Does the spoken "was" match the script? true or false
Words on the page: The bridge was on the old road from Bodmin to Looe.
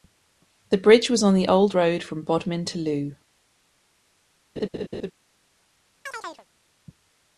true